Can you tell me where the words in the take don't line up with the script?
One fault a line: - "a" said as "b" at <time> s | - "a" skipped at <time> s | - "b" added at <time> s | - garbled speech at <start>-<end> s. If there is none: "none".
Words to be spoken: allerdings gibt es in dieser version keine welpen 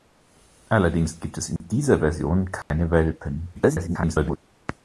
- garbled speech at 3.5-4.4 s